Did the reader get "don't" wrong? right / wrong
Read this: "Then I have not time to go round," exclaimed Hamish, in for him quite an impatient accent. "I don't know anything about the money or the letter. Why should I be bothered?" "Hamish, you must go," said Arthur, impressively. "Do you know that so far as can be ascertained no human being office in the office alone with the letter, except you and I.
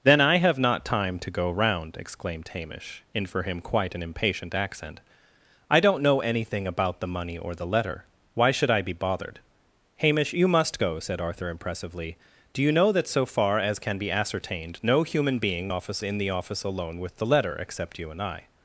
right